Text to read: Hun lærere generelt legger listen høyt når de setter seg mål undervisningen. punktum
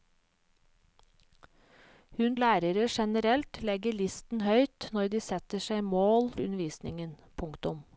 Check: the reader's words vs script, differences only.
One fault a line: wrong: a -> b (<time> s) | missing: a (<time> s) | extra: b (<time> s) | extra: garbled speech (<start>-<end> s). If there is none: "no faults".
no faults